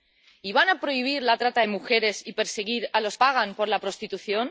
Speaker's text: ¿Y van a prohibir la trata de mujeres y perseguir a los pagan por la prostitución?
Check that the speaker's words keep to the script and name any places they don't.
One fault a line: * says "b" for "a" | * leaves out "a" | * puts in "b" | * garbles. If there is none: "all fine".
all fine